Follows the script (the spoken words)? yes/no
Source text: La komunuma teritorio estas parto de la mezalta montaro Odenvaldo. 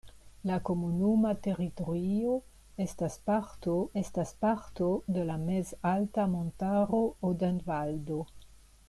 no